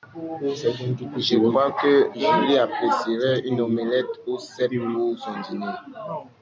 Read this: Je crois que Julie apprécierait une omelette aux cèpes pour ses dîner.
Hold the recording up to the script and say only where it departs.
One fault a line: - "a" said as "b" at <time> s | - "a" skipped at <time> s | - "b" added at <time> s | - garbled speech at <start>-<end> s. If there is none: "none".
- "ses" said as "son" at 5.2 s